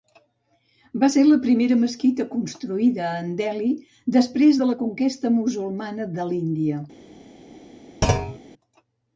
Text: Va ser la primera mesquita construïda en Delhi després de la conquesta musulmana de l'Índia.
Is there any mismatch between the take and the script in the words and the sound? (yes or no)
yes